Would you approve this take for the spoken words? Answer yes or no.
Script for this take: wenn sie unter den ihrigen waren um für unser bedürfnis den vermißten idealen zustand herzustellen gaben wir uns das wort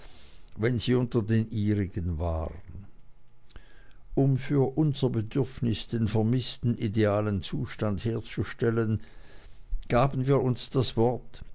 yes